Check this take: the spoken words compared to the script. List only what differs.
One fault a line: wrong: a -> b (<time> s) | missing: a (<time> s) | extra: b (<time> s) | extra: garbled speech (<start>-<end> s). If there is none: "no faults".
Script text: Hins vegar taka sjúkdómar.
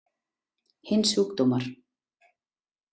missing: vegar taka (1.1 s)